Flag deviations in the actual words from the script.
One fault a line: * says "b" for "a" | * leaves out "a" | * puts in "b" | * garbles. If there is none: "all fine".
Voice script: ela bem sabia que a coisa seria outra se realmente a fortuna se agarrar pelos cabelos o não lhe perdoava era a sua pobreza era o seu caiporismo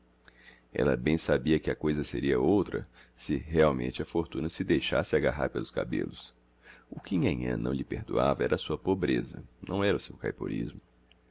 * puts in "deixasse"
* puts in "que nhanhã"
* puts in "não"